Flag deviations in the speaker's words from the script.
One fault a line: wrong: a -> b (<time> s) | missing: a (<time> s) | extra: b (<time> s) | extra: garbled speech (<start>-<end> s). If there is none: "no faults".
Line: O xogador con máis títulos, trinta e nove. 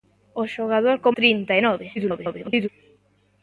missing: máis títulos (1.1 s)
extra: garbled speech (2.0-2.7 s)